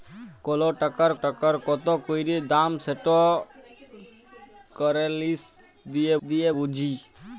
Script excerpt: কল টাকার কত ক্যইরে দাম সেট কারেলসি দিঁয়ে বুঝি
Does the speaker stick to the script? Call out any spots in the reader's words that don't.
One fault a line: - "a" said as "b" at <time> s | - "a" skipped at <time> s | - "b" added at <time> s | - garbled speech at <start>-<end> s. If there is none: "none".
- "টাকার" added at 1.2 s
- "দিঁয়ে" added at 6.2 s